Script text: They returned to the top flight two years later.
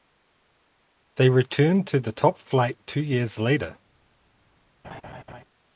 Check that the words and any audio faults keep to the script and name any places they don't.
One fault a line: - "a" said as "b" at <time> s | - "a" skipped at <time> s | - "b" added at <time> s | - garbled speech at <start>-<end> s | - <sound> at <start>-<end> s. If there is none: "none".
- laugh at 4.8-5.4 s